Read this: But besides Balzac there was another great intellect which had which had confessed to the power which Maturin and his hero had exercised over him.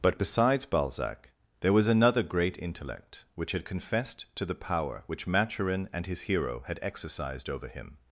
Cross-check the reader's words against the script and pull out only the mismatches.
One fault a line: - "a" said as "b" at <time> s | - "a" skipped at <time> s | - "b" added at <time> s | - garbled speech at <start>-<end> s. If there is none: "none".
- "which had" skipped at 3.6 s